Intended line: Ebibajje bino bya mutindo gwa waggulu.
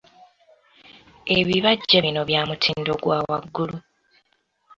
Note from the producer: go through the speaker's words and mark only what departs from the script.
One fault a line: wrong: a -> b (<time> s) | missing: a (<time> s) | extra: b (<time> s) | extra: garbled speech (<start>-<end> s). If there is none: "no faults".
no faults